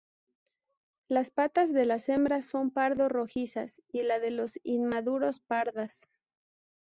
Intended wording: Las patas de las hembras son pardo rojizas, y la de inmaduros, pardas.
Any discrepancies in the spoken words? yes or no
yes